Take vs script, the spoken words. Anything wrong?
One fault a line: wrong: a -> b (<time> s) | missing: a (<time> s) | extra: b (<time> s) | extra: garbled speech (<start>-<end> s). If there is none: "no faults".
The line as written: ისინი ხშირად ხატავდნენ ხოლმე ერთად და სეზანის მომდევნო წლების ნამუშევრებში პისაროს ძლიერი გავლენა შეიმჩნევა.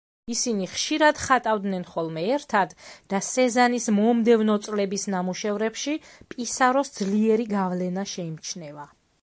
no faults